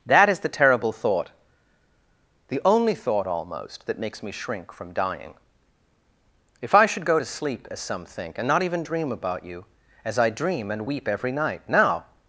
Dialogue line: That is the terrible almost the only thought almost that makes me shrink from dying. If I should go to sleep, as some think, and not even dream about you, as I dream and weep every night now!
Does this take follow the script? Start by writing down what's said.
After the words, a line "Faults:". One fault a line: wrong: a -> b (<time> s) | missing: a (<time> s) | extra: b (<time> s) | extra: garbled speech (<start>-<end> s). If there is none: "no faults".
That is the terrible thought the only thought almost that makes me shrink from dying. If I should go to sleep, as some think, and not even dream about you, as I dream and weep every night now!
Faults:
wrong: almost -> thought (0.9 s)